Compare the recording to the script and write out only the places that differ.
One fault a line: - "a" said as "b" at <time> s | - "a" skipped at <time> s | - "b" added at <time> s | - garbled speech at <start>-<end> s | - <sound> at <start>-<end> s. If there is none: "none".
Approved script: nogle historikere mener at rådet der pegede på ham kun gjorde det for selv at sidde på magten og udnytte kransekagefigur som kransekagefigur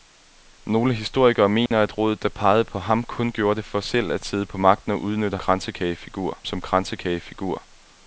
- dropout at 1.7-1.7 s